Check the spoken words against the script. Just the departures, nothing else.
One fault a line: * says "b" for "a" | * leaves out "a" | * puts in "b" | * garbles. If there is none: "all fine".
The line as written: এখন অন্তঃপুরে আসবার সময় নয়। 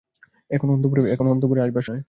* leaves out "সময়"